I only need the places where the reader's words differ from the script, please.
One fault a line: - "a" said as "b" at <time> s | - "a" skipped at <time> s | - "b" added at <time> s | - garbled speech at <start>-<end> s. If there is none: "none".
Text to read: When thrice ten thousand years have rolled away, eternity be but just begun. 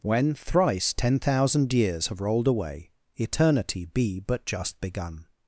none